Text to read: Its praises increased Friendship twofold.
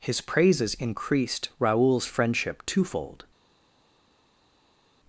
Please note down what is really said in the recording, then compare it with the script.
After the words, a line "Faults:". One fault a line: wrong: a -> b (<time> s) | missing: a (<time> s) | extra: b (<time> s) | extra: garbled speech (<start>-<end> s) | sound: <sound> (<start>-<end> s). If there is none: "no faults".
His praises increased Raoul's friendship twofold.
Faults:
wrong: Its -> His (0.0 s)
extra: Raoul's (1.6 s)